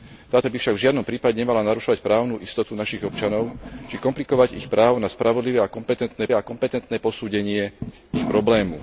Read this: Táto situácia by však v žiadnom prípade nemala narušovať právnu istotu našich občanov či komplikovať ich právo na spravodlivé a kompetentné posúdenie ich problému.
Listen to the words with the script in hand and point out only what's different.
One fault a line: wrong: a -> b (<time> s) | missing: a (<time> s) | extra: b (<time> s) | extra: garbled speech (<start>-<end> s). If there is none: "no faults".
missing: situácia (0.5 s)
extra: a kompetentné (6.3 s)